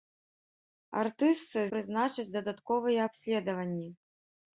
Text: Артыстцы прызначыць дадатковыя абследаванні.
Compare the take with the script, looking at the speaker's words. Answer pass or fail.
pass